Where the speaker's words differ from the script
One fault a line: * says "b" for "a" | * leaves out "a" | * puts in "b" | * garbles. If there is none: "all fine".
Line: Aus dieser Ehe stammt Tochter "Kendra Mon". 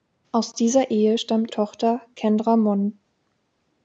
all fine